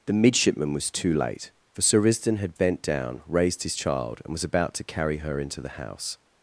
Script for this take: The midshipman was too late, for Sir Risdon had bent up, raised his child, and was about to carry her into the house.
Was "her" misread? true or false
false